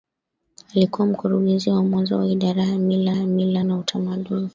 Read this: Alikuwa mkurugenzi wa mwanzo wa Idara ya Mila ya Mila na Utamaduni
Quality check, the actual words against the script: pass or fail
pass